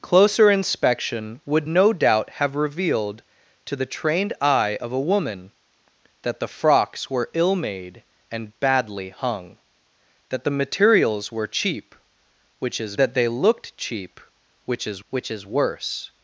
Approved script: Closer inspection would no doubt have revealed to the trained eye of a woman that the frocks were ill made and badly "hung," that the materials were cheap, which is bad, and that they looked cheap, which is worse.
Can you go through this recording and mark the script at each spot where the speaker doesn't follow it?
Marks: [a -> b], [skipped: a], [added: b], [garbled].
Closer inspection would no doubt have revealed to the trained eye of a woman that the frocks were ill made and badly "hung," that the materials were cheap, which is [skipped: bad, and] that they looked cheap, which is [added: which is] worse.